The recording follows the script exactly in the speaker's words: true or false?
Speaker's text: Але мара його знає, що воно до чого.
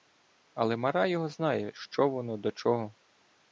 true